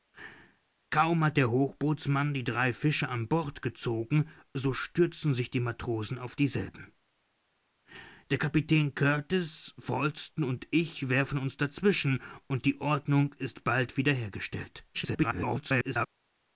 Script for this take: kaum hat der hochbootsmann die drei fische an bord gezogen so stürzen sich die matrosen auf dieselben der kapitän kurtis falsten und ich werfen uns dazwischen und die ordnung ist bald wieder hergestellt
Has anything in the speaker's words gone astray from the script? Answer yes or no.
yes